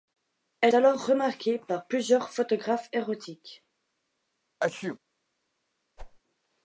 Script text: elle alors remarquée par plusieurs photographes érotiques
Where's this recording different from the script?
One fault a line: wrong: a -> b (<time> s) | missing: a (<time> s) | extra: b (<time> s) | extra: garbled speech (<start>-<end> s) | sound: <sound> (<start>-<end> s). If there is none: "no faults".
sound: sneeze (4.6-5.0 s)
sound: whoosh (6.0-6.2 s)